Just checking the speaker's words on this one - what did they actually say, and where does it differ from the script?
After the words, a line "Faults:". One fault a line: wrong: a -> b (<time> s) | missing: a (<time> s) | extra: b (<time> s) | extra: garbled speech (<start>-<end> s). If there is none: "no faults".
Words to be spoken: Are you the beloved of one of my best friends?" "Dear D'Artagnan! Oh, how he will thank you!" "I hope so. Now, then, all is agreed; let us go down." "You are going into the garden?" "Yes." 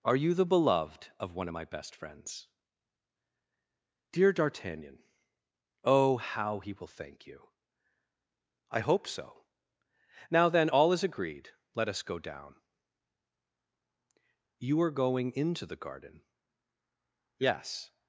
Are you the beloved of one of my best friends?" "Dear D'Artagnan! Oh, how he will thank you!" "I hope so. Now, then, all is agreed; let us go down." "You are going into the garden?" "Yes."
Faults:
no faults